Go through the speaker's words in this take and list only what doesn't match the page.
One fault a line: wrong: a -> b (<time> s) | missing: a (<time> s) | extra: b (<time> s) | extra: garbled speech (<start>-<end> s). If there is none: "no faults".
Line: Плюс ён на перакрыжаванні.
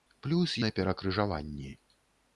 missing: ён (0.6 s)